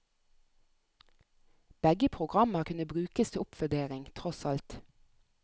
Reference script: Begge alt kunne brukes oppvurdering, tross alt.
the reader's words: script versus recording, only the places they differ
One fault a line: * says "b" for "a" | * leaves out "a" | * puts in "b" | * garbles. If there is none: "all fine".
* says "programmer" for "alt"
* puts in "til"